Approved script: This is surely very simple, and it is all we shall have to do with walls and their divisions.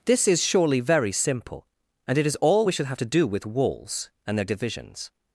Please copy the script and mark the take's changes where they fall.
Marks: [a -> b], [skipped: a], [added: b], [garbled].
This is surely very simple, and it is all we [shall -> should] have to do with walls and their divisions.